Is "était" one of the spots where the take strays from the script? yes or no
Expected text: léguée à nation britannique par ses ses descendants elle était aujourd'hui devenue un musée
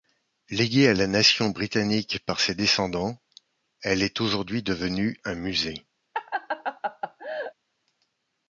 yes